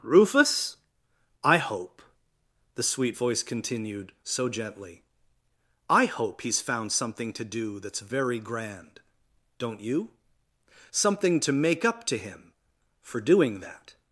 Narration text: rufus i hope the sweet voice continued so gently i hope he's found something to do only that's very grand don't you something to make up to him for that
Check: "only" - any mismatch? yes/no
yes